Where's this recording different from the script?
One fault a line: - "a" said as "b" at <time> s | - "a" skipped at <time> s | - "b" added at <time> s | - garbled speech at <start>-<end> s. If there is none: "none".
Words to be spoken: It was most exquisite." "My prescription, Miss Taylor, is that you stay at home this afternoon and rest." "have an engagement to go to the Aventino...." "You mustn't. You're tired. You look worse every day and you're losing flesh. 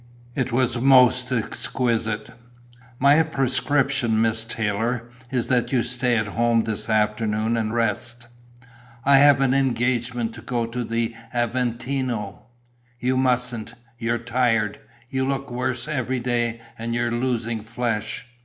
- "I" added at 9.0 s